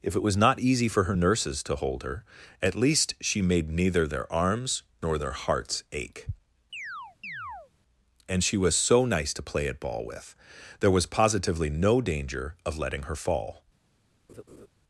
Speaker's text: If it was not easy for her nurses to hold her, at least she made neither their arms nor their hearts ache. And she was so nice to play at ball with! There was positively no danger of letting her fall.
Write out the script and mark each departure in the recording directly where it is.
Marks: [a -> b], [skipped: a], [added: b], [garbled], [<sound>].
If it was not easy for her nurses to hold her, at least she made neither their arms nor their hearts ache. [chirp] And she was so nice to play at ball with! There was positively no danger of letting her fall. [laugh]